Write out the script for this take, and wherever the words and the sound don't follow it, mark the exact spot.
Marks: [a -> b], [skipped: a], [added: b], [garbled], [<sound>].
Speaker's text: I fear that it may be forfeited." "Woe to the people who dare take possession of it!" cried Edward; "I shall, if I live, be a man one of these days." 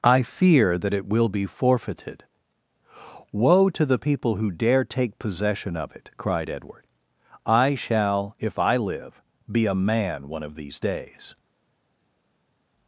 I fear that it [may -> will] be forfeited." "Woe to the people who dare take possession of it!" cried Edward; "I shall, if I live, be a man one of these days."